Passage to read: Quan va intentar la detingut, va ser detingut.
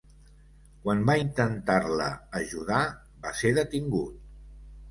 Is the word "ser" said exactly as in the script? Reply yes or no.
yes